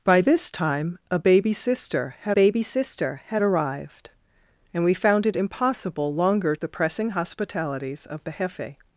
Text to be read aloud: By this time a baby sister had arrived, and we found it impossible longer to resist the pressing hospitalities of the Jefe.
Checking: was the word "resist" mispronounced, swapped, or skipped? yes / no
yes